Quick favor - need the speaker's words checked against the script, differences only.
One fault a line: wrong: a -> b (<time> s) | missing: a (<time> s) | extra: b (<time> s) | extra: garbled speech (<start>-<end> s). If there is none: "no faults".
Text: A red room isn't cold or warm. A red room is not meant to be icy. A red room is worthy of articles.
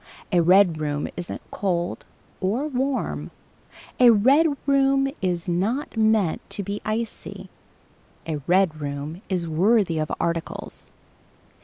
no faults